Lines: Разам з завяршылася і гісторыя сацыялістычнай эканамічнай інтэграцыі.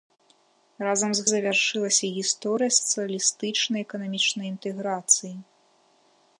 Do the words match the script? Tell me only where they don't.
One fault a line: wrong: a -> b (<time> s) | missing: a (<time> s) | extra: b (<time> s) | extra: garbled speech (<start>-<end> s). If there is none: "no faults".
no faults